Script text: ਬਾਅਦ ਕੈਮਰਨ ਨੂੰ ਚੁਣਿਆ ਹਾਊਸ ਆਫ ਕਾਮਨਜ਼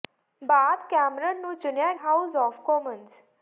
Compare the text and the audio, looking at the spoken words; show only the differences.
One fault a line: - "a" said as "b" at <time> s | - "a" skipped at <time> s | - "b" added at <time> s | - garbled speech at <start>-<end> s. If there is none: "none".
none